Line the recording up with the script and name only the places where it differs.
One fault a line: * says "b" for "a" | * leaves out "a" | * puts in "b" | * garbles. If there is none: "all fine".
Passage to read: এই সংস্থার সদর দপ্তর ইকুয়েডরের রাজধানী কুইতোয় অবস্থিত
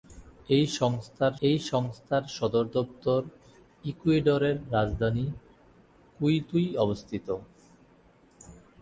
* puts in "এই সংস্থার"